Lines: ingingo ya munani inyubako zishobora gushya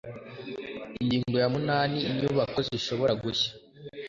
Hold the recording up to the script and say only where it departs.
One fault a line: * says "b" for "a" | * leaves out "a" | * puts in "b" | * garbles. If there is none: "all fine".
all fine